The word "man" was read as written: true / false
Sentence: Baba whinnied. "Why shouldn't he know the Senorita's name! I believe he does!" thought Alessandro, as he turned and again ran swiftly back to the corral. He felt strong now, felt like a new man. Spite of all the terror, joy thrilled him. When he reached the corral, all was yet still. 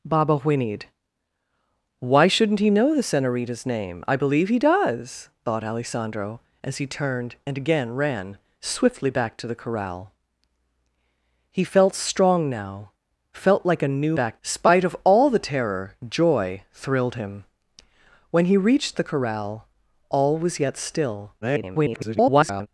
false